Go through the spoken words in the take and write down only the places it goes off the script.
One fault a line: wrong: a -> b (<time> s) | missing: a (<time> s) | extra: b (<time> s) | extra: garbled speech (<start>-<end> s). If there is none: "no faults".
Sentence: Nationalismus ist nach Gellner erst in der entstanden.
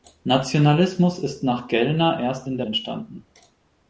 no faults